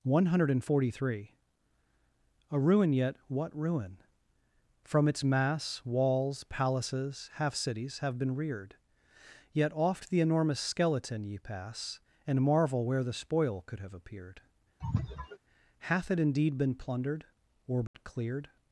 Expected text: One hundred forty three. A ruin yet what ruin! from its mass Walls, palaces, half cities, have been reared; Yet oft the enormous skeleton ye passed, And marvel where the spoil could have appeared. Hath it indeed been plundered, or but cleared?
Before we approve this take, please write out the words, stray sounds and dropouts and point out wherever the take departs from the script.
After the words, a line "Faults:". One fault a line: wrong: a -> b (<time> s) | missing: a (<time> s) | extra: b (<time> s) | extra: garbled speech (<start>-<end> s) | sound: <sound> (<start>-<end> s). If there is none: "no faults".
One hundred forty three. A ruin yet what ruin! from its mass Walls, palaces, half cities, have been reared; Yet oft the enormous skeleton ye pass, And marvel where the spoil could have appeared. Hath it indeed been plundered, or but cleared?
Faults:
wrong: passed -> pass (11.4 s)
sound: sneeze (14.8-15.4 s)
sound: dropout (17.9-17.9 s)